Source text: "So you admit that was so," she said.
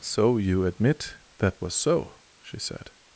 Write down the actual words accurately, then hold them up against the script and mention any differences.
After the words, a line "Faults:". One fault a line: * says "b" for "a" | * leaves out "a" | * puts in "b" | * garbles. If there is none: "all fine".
"So you admit that was so," she said.
Faults:
all fine